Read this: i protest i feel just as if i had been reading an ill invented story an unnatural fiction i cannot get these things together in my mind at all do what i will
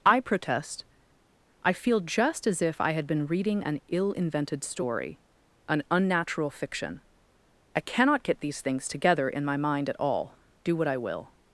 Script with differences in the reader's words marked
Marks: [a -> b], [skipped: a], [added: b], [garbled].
i protest i feel just as if i had been reading an ill invented story an unnatural fiction i cannot get these things together in my mind at all do what i will